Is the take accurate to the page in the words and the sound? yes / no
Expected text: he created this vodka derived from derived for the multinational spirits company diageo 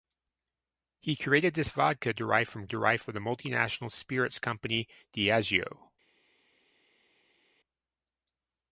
yes